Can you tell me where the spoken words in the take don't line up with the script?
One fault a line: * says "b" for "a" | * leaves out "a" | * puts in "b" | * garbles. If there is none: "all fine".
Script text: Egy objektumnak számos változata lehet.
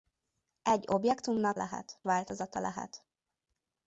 * says "lehet" for "számos"